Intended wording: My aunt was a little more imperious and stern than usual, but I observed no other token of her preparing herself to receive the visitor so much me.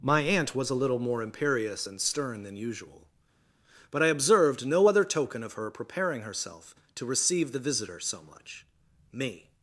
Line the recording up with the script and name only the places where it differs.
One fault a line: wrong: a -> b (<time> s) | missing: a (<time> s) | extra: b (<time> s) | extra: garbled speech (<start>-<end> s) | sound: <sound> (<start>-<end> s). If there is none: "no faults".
no faults